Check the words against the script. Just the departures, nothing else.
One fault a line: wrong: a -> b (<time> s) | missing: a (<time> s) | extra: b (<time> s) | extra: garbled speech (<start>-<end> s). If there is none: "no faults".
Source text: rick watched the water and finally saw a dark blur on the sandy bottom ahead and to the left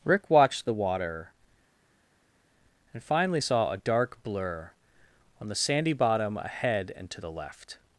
no faults